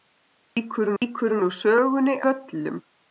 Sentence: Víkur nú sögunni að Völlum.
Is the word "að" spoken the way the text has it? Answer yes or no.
no